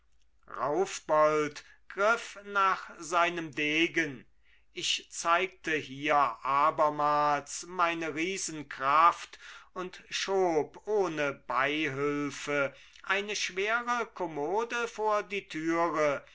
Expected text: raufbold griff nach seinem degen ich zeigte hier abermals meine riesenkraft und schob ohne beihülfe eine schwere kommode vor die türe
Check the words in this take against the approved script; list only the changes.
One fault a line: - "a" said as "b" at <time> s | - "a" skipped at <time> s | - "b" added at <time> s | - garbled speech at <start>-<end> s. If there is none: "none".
none